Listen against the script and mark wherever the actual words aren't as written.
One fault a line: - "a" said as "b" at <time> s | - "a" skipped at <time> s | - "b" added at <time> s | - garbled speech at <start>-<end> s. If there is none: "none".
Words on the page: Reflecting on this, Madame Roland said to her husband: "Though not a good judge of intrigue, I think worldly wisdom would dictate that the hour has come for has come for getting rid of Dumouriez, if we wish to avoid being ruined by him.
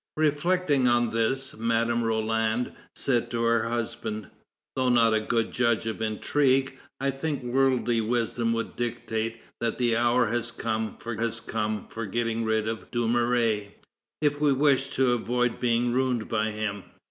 none